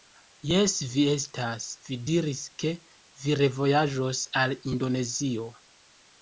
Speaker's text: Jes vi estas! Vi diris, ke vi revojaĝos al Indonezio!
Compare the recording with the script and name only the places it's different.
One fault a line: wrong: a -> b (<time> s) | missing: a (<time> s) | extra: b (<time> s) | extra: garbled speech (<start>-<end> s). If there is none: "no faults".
no faults